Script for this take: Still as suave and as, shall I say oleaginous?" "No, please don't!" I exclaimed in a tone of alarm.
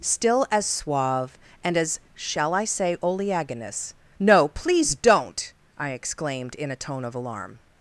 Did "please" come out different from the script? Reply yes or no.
no